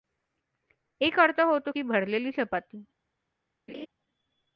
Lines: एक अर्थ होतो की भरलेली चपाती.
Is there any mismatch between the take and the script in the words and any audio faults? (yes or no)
yes